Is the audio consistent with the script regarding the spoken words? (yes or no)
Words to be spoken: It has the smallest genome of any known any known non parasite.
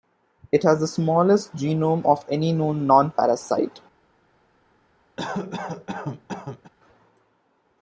no